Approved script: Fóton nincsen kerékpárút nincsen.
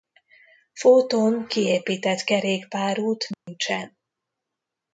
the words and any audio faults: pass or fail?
fail